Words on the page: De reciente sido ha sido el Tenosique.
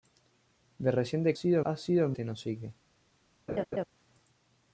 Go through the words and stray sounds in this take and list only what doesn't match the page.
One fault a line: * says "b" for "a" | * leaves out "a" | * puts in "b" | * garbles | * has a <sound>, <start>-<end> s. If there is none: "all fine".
* has a laugh, 3.5-3.9 s